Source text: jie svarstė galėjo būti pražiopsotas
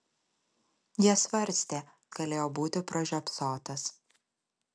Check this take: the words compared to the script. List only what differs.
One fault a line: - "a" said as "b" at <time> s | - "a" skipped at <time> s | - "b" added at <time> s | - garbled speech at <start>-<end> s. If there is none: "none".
none